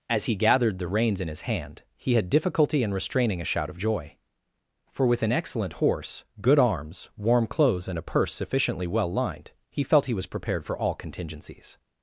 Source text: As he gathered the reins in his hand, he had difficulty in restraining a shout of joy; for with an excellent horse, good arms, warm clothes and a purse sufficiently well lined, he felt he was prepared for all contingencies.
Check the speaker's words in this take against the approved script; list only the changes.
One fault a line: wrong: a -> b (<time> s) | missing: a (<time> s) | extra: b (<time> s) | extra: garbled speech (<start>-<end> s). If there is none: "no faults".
no faults